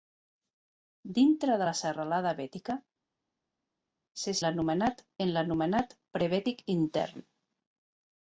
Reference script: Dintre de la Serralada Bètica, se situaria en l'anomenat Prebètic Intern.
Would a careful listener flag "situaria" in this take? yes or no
yes